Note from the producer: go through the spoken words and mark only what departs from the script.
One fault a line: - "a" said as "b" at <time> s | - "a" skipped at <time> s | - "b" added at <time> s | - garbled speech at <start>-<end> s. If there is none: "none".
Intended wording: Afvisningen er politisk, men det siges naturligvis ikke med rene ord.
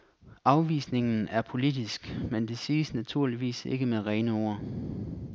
none